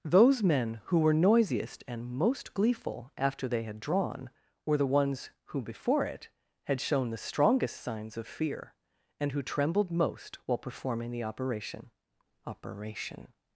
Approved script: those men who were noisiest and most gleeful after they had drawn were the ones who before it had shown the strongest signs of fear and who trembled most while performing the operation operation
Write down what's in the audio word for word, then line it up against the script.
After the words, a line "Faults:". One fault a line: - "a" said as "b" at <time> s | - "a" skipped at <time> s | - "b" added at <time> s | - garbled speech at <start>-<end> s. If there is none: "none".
those men who were noisiest and most gleeful after they had drawn were the ones who before it had shown the strongest signs of fear and who trembled most while performing the operation operation
Faults:
none